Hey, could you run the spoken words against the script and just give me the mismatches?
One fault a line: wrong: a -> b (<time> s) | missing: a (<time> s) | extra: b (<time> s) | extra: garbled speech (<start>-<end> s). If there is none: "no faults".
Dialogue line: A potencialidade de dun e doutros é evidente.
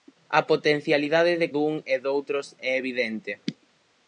no faults